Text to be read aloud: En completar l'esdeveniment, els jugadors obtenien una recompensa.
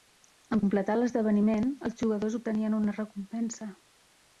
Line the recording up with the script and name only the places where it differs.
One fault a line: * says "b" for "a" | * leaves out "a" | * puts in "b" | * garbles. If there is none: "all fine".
all fine